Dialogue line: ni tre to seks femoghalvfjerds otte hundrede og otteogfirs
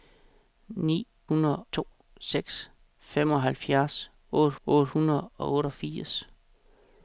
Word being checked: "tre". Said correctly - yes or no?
no